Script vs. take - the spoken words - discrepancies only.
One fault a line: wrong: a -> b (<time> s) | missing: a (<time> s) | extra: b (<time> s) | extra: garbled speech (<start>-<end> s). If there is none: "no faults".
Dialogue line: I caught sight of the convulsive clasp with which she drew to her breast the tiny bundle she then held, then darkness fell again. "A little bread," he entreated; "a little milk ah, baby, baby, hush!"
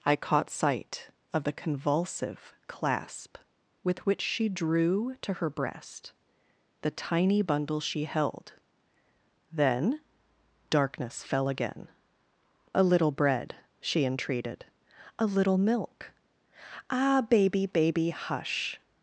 missing: then (8.0 s)
wrong: he -> she (13.8 s)